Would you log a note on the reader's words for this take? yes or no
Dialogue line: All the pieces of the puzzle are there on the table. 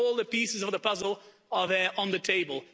no